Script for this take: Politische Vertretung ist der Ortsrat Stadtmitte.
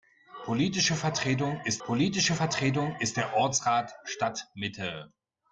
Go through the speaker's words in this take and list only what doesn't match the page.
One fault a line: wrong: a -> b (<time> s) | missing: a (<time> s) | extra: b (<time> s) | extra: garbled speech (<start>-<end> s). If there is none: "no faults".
extra: politische Vertretung ist (1.9 s)